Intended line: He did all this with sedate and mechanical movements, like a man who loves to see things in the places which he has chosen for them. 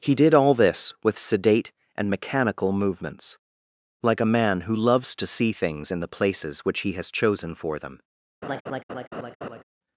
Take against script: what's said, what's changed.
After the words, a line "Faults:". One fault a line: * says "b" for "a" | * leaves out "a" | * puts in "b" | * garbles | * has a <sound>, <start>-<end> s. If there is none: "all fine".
He did all this with sedate and mechanical movements, like a man who loves to see things in the places which he has chosen for them.
Faults:
* has a laugh, 8.4-9.6 s